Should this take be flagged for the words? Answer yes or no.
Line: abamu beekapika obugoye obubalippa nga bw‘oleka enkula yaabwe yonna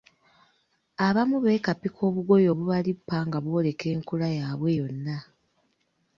no